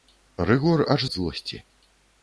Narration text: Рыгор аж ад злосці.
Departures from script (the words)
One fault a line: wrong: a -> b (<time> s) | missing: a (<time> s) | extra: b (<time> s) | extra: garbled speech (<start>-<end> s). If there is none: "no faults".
no faults